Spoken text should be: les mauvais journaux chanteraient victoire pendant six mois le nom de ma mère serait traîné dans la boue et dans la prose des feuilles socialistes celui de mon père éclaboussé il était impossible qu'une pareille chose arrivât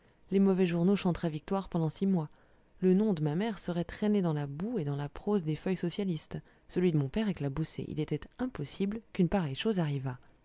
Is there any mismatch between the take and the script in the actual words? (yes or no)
no